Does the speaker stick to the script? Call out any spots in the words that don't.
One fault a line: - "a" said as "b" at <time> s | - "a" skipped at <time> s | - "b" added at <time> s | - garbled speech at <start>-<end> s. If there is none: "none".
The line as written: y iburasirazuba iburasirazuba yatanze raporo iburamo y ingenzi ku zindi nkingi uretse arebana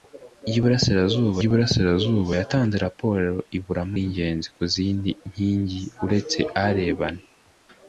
none